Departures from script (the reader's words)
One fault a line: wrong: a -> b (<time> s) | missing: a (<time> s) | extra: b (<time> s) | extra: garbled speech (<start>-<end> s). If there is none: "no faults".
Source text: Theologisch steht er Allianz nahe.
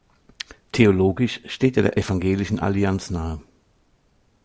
extra: der Evangelischen (1.8 s)